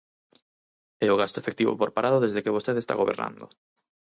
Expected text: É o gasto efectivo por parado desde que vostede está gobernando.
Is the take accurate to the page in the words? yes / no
yes